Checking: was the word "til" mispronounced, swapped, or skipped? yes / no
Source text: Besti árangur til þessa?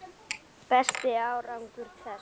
yes